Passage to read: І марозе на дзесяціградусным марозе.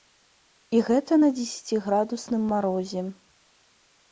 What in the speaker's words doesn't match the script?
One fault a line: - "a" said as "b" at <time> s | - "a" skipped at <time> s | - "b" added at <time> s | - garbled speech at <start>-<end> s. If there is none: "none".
- "марозе" said as "гэта" at 0.9 s